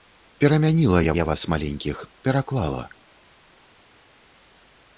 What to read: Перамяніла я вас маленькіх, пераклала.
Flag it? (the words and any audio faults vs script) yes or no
yes